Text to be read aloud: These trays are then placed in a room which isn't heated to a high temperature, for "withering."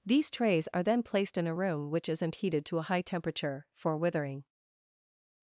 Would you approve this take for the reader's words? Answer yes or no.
yes